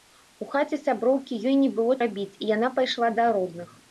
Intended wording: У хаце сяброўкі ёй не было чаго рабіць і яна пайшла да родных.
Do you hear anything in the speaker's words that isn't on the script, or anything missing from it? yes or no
yes